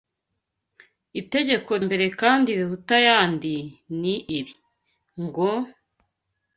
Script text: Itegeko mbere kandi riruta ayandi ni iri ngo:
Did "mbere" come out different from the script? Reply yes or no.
no